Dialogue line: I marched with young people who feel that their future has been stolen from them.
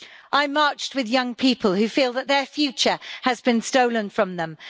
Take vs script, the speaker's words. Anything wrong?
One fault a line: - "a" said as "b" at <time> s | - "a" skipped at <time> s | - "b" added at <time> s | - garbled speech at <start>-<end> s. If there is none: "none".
none